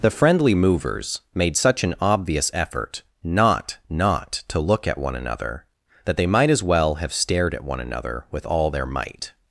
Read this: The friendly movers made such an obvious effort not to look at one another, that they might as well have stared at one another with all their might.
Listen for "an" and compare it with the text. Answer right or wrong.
right